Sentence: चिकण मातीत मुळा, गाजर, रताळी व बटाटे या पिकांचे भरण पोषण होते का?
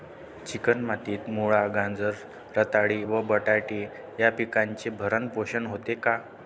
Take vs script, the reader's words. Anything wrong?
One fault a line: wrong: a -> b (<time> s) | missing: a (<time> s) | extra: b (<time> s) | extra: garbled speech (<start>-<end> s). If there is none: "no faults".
no faults